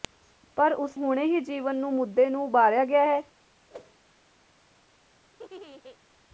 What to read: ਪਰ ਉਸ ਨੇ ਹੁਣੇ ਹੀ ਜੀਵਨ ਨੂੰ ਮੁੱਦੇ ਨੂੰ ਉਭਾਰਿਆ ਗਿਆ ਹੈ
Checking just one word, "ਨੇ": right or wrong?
wrong